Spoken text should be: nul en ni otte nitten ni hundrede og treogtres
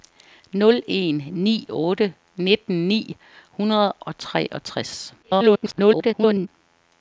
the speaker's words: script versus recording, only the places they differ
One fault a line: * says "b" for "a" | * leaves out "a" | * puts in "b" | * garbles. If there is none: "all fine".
* garbles